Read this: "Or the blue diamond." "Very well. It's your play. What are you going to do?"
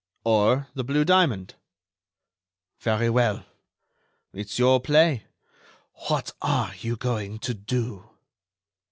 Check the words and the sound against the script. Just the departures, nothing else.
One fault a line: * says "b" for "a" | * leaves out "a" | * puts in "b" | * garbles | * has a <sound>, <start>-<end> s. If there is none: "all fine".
all fine